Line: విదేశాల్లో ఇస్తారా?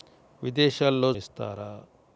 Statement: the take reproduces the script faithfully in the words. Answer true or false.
true